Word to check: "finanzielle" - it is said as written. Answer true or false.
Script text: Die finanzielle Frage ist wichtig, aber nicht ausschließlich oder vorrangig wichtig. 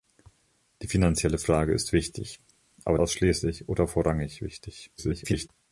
true